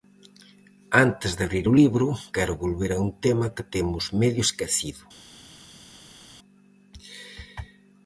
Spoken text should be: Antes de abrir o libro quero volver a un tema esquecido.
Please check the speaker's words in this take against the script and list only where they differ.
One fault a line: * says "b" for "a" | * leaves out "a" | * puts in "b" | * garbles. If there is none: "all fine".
* puts in "que temos medio"